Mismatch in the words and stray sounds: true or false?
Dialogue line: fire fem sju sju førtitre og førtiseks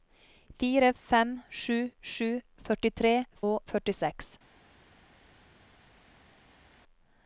false